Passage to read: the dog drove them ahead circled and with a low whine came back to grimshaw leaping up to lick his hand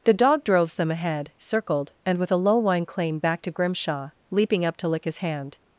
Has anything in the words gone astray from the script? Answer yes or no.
yes